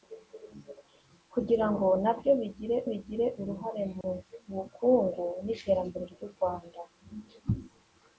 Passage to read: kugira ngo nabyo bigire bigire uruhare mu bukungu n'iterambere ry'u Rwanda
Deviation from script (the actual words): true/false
false